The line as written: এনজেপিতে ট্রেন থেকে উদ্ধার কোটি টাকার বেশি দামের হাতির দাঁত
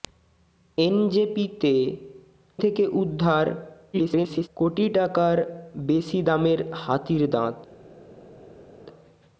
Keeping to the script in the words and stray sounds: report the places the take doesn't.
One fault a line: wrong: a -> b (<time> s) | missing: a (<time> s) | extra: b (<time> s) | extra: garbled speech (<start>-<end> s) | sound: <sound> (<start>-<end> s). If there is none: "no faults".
missing: ট্রেন (1.7 s)
extra: garbled speech (3.9-4.5 s)